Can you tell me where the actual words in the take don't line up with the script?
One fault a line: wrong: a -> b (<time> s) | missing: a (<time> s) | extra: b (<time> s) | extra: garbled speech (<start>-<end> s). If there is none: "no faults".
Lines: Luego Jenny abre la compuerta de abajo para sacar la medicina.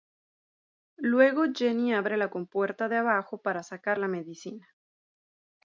no faults